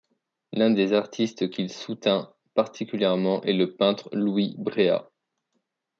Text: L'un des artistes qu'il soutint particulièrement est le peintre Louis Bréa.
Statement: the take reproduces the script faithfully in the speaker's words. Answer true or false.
true